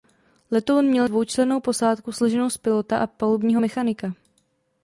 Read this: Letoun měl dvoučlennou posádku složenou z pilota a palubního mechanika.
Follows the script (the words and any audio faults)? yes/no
yes